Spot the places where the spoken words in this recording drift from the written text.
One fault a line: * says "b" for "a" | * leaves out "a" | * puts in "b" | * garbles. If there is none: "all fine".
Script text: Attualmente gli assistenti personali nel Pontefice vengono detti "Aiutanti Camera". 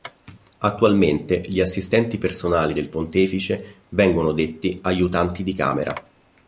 * says "del" for "nel"
* puts in "di"